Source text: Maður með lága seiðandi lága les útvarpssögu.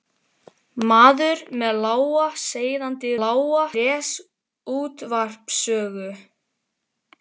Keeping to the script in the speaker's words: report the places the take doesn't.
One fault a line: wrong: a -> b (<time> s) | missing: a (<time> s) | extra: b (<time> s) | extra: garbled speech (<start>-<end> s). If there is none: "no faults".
no faults